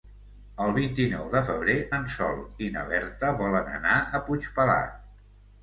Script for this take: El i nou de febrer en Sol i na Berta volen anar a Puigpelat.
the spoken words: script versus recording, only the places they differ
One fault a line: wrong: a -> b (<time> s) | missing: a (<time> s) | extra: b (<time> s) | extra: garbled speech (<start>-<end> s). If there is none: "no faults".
extra: vint (0.8 s)